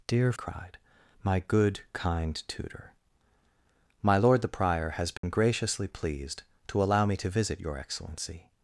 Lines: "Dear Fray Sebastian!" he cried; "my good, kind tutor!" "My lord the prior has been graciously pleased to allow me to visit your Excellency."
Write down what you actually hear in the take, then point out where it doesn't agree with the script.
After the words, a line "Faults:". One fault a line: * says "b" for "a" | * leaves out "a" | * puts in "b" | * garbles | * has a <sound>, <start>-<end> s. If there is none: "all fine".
"Dear Cried; "my good, kind tutor!" "My lord the prior has been graciously pleased to allow me to visit your Excellency."
Faults:
* leaves out "Fray Sebastian he"
* has a dropout, 5.2-5.2 s